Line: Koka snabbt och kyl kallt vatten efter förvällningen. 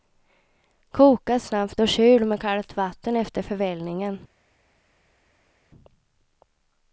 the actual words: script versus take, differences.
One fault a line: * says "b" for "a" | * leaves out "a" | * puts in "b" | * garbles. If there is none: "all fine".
* puts in "med"